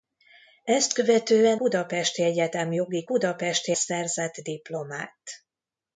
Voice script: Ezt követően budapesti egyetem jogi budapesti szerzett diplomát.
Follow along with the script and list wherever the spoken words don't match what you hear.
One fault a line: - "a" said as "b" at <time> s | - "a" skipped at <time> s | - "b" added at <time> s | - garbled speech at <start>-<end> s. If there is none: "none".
none